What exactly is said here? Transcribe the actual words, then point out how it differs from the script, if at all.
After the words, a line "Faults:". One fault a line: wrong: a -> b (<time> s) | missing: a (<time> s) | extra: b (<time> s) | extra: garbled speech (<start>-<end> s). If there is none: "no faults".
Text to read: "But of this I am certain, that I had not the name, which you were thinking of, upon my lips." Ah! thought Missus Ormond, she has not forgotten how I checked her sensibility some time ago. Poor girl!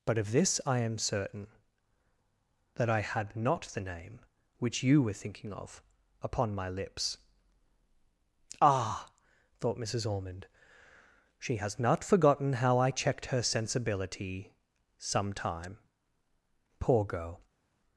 "But of this I am certain, that I had not the name, which you were thinking of, upon my lips." Ah! thought Missus Ormond, she has not forgotten how I checked her sensibility some time. Poor girl!
Faults:
missing: ago (15.8 s)